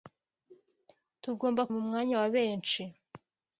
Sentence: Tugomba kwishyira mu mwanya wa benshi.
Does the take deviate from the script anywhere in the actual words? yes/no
yes